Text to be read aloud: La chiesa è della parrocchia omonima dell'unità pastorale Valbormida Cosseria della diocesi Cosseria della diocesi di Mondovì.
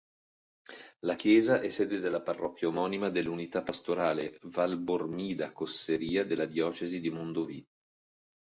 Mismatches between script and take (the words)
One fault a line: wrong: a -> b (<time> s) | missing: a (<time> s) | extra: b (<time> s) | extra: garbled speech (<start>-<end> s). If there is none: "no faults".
extra: sede (1.7 s)
missing: Cosseria della diocesi (7.0 s)